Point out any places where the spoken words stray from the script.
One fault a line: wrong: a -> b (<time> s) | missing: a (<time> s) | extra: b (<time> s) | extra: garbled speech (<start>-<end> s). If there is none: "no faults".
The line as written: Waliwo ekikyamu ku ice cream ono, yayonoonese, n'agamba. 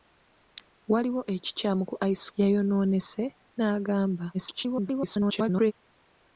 missing: cream ono (2.3 s)
extra: garbled speech (4.3-5.7 s)